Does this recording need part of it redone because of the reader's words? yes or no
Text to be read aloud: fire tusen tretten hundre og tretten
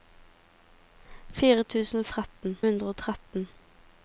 no